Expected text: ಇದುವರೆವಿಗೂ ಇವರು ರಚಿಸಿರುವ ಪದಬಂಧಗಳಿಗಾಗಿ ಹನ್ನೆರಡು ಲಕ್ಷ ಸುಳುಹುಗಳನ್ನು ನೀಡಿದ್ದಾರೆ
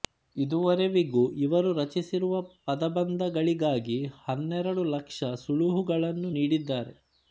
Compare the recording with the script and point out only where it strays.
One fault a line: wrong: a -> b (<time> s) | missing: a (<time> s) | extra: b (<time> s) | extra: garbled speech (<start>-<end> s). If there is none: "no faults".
no faults